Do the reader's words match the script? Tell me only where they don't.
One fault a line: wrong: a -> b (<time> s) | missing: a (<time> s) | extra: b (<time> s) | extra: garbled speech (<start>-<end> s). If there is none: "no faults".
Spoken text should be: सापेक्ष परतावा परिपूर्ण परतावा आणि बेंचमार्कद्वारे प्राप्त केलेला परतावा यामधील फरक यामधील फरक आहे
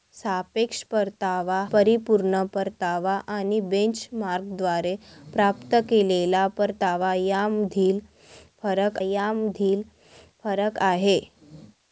no faults